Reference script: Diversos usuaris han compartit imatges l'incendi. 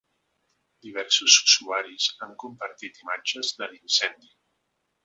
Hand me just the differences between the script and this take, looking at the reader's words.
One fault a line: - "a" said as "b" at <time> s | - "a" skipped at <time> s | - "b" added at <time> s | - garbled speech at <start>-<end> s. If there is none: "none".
- "de" added at 3.6 s